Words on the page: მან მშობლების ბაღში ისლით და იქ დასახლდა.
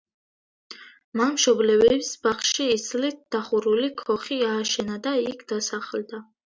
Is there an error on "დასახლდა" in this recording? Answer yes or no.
no